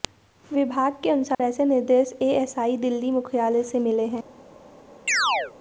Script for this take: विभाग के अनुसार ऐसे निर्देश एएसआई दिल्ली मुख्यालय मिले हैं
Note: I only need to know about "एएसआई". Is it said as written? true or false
true